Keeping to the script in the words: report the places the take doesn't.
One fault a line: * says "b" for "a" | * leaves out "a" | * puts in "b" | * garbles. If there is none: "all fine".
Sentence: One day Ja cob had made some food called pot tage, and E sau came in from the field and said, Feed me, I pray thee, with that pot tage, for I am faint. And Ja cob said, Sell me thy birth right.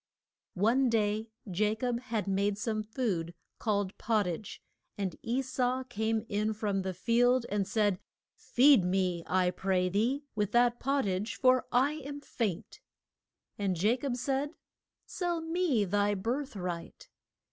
all fine